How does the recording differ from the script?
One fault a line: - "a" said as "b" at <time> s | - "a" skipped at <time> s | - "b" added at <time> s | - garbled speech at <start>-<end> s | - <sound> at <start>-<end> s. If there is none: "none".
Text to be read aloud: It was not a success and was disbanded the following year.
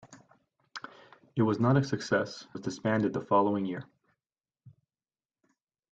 - "and" skipped at 2.5 s